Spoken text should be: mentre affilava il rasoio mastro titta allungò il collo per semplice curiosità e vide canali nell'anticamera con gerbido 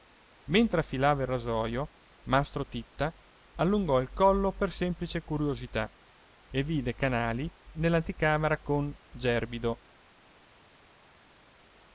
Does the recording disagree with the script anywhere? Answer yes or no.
no